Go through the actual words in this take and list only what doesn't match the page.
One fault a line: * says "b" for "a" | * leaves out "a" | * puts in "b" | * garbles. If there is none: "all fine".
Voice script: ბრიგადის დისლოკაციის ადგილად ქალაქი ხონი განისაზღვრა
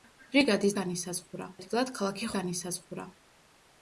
* says "განისაზღვრა" for "დისლოკაციის"
* leaves out "ხონი"